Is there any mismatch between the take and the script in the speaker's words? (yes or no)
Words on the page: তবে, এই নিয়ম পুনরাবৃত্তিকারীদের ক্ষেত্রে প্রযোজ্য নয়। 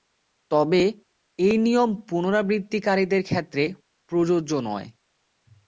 no